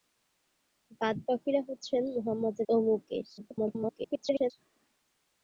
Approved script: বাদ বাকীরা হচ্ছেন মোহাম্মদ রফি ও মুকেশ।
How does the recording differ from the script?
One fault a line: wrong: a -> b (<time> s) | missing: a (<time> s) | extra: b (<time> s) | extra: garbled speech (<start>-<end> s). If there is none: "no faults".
missing: রফি (2.5 s)
extra: garbled speech (3.4-4.5 s)